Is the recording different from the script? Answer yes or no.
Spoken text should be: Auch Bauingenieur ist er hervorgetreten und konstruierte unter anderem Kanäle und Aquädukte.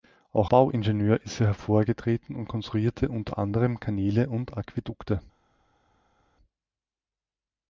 no